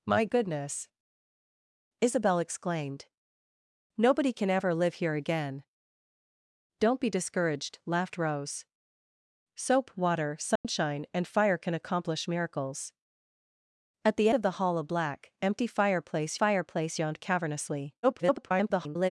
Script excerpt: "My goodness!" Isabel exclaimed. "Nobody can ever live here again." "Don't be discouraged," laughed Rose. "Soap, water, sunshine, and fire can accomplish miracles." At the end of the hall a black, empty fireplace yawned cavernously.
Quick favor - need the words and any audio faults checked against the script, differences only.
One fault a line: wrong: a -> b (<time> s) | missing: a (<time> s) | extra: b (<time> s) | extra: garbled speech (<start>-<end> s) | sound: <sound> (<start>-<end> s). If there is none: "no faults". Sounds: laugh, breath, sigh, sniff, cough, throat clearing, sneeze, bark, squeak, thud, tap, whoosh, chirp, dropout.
sound: dropout (10.6-10.6 s)
missing: end (14.3 s)
extra: fireplace (16.3 s)
extra: garbled speech (18.0-19.1 s)